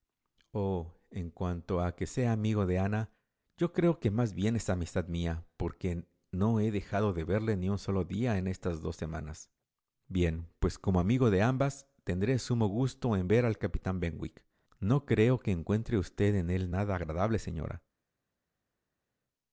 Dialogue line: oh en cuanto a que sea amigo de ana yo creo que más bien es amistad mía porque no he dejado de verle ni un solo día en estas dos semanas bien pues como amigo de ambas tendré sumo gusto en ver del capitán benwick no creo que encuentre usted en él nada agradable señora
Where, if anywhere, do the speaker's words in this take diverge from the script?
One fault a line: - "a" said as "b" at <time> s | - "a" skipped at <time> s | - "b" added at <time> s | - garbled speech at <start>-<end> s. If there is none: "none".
- "del" said as "al" at 13.4 s